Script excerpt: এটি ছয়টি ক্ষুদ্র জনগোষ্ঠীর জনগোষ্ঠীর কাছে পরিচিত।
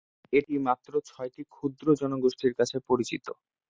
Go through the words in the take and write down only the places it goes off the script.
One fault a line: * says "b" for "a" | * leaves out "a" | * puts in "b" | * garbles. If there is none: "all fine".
* puts in "মাত্র"
* leaves out "জনগোষ্ঠীর"